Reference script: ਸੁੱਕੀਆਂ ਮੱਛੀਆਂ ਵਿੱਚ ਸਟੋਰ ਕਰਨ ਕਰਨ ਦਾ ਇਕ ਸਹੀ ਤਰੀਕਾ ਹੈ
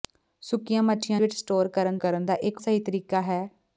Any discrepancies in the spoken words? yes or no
no